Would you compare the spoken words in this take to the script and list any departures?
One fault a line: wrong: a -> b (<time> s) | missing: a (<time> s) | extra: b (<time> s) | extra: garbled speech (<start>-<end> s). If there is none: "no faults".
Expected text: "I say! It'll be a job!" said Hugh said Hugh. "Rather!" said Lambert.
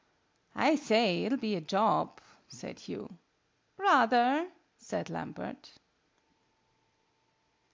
missing: said Hugh (3.2 s)